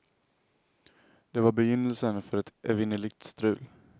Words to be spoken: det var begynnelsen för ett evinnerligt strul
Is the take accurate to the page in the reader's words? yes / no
yes